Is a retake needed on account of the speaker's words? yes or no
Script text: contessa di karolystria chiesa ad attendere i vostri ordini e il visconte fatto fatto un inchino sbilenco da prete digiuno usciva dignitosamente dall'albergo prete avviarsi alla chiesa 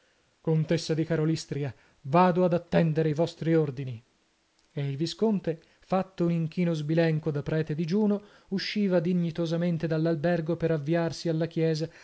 yes